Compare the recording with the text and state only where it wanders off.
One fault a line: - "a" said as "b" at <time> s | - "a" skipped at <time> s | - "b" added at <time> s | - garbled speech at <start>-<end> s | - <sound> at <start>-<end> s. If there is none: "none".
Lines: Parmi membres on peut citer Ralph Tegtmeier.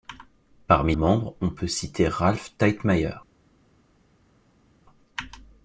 none